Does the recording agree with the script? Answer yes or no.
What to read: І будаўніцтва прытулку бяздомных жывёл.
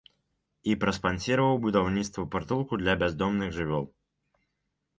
no